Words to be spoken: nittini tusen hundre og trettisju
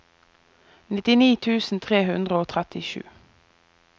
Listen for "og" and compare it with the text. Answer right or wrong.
right